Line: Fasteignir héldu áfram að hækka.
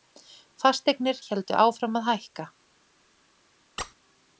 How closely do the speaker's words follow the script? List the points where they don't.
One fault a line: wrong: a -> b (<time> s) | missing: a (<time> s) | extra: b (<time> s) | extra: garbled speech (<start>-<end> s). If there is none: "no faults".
no faults